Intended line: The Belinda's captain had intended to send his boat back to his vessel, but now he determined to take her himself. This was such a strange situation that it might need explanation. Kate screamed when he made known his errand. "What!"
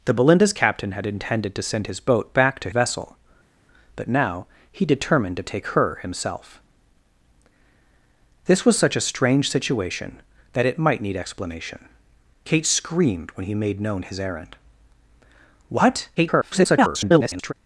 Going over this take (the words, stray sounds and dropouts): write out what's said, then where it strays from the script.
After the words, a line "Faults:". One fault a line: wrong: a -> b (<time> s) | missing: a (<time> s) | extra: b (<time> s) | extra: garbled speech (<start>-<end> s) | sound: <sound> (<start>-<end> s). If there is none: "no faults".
The Belinda's captain had intended to send his boat back to vessel, but now he determined to take her himself. This was such a strange situation that it might need explanation. Kate screamed when he made known his errand. "What!" [garbled]
Faults:
missing: his (2.7 s)
extra: garbled speech (16.2-17.5 s)